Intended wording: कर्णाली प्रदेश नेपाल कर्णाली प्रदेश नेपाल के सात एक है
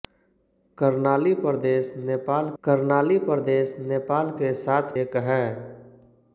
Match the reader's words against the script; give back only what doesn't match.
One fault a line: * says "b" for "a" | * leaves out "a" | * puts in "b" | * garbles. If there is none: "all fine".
all fine